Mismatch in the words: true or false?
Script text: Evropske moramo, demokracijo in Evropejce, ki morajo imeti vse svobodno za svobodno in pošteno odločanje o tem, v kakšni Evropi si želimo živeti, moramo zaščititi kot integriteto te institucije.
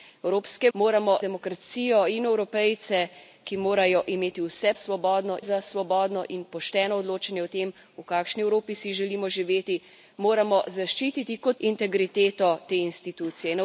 false